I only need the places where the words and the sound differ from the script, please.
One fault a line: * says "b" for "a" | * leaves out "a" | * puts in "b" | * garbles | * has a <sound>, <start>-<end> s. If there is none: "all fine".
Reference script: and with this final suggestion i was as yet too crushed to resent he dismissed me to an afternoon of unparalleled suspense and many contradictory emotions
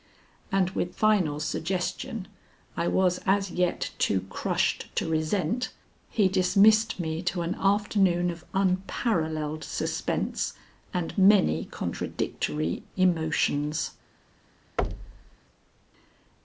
* leaves out "this"
* has a thud, 14.8-15.4 s